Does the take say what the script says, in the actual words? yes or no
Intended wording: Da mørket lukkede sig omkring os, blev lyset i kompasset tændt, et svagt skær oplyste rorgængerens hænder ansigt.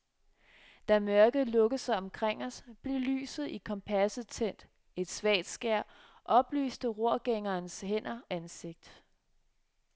yes